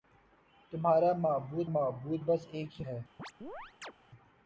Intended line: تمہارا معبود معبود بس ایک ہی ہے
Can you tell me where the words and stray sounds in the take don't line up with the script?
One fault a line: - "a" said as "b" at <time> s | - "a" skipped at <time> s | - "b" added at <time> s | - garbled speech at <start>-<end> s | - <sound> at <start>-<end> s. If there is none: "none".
- chirp at 3.2-3.9 s